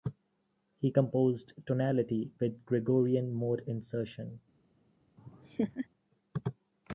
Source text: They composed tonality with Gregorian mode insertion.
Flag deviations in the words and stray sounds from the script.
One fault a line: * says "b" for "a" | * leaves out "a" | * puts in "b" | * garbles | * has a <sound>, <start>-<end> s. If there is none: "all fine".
* says "He" for "They"
* has a laugh, 5.2-5.9 s